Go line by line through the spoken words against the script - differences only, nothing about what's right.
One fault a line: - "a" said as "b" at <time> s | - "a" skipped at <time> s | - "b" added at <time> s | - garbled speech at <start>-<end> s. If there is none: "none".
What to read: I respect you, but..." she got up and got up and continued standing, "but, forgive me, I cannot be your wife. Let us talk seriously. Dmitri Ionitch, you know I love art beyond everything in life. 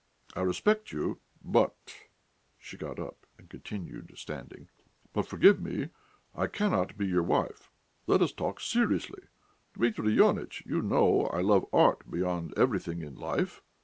- "got up and" skipped at 3.5 s